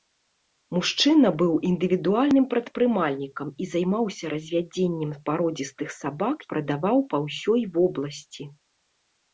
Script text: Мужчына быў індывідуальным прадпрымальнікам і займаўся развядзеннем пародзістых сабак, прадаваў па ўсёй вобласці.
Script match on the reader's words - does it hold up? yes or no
yes